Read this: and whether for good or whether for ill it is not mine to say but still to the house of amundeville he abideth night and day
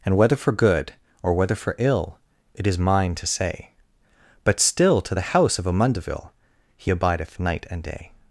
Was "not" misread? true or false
true